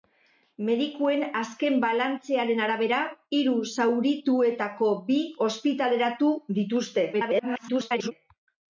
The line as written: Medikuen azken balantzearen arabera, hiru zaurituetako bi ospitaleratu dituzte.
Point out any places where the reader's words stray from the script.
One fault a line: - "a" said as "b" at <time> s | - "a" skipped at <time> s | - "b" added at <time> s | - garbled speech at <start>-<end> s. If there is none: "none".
- garbled speech at 7.1-8.1 s